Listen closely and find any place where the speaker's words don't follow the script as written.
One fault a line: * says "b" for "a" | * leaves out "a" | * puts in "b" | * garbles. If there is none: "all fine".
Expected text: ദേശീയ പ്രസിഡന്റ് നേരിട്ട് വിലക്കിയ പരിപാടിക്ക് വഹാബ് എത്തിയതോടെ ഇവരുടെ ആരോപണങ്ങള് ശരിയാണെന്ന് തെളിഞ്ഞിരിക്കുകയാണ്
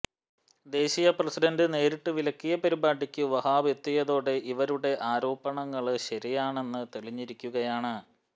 all fine